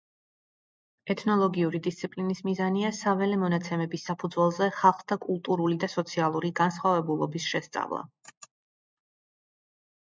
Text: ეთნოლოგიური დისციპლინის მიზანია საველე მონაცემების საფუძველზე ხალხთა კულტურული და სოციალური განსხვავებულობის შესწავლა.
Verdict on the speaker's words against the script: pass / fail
pass